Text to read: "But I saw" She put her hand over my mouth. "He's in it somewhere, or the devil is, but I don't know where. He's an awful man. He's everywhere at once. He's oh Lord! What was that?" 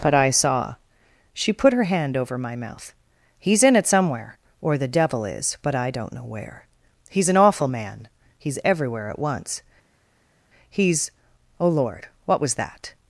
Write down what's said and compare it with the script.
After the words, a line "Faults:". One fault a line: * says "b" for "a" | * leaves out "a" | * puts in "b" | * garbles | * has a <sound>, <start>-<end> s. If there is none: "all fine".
"But I saw" She put her hand over my mouth. "He's in it somewhere, or the devil is, but I don't know where. He's an awful man. He's everywhere at once. He's oh Lord! What was that?"
Faults:
all fine